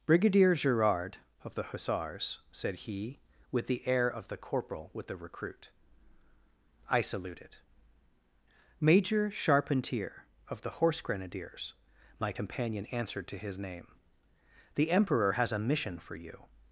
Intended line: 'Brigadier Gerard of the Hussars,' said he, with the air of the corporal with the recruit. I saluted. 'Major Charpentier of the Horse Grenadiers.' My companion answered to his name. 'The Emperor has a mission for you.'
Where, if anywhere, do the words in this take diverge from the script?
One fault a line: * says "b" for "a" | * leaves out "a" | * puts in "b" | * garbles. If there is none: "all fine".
all fine